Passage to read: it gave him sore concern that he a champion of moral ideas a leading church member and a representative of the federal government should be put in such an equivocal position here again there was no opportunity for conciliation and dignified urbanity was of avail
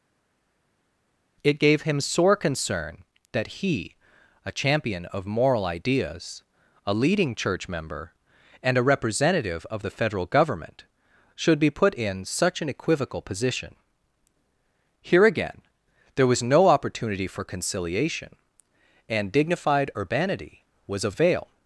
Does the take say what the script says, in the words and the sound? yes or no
yes